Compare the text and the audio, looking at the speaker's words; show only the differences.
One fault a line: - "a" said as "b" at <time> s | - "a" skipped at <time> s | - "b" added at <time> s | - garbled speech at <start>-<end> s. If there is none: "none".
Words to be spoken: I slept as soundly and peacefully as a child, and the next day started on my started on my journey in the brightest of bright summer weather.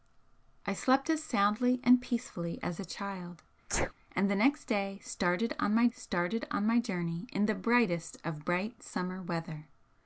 none